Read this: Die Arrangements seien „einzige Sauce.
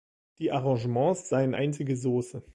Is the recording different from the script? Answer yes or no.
no